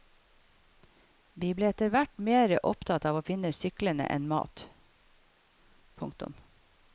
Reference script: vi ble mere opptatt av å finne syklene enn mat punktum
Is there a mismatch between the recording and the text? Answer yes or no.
yes